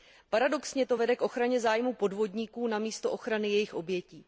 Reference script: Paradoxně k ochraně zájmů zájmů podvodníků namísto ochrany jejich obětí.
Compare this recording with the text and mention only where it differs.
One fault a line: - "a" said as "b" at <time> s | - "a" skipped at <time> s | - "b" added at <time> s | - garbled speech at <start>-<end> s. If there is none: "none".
- "to vede" added at 0.8 s
- "zájmů" skipped at 1.9 s